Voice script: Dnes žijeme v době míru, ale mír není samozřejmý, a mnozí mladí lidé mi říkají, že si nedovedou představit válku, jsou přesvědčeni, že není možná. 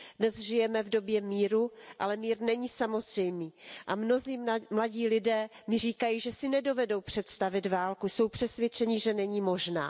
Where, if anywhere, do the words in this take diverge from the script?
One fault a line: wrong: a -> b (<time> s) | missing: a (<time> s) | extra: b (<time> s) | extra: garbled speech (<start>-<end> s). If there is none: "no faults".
no faults